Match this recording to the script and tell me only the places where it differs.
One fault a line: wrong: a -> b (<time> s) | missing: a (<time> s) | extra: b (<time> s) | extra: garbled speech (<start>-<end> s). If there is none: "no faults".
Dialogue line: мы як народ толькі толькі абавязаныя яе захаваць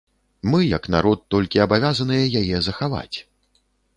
missing: толькі (1.6 s)